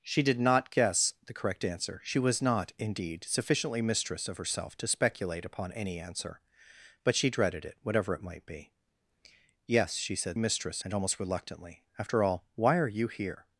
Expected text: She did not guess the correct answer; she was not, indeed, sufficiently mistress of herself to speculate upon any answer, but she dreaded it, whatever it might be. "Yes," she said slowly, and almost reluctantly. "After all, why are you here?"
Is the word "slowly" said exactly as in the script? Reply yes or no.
no